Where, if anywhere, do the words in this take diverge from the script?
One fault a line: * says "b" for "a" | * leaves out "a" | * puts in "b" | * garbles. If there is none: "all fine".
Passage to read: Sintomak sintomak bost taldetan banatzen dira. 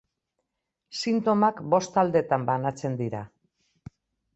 * leaves out "sintomak"